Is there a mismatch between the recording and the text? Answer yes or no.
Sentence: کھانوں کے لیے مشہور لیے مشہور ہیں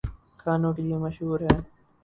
yes